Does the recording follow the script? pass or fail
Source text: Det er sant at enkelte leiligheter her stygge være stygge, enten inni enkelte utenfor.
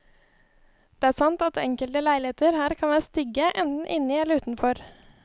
fail